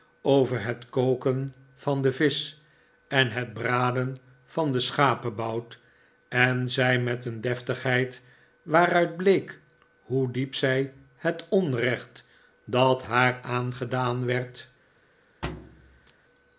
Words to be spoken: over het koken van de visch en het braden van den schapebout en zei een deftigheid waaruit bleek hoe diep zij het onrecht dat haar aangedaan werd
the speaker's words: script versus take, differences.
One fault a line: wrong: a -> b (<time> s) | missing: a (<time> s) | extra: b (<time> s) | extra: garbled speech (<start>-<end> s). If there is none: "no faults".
extra: met (7.0 s)